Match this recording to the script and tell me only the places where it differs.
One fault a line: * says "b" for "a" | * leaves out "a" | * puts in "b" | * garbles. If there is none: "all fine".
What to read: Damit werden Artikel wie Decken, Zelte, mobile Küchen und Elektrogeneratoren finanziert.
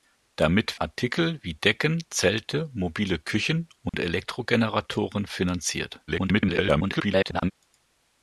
* leaves out "werden"
* garbles